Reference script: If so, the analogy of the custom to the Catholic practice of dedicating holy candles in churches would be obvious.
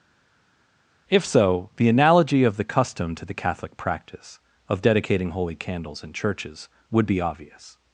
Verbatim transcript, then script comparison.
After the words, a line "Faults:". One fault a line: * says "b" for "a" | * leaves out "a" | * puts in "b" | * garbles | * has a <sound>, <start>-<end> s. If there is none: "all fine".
If so, the analogy of the custom to the Catholic practice of dedicating holy candles in churches would be obvious.
Faults:
all fine